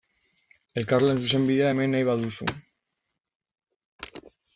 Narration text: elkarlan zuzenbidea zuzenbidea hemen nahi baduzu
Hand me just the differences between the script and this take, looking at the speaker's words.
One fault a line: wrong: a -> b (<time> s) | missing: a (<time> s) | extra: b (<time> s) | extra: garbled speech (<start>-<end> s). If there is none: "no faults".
missing: zuzenbidea (1.7 s)